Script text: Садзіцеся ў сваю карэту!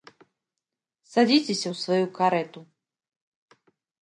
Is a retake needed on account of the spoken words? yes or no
no